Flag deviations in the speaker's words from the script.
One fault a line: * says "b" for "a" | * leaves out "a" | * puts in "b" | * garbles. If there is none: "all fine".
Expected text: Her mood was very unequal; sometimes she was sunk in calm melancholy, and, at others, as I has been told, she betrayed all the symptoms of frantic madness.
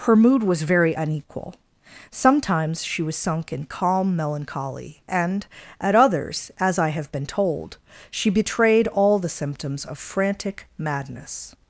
* says "have" for "has"